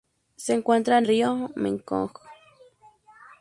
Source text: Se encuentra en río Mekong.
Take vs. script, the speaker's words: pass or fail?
pass